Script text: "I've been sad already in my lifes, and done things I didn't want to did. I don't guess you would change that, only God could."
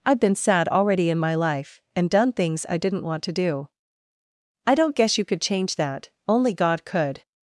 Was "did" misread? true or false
true